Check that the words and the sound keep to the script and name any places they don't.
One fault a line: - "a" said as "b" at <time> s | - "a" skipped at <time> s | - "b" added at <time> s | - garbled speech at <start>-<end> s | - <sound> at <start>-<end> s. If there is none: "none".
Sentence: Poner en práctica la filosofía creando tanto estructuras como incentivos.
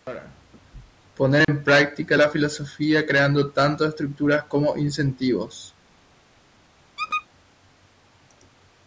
- dropout at 1.4-1.5 s
- squeak at 7.0-7.3 s